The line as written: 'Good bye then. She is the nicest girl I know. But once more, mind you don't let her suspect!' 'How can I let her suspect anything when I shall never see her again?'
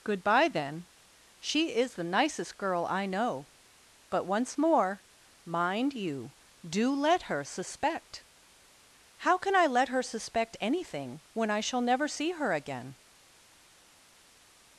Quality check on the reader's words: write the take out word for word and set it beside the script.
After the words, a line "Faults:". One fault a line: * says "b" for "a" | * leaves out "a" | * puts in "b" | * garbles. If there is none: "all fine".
'Good bye then. She is the nicest girl I know. But once more, mind you do let her suspect!' 'How can I let her suspect anything when I shall never see her again?'
Faults:
* says "do" for "don't"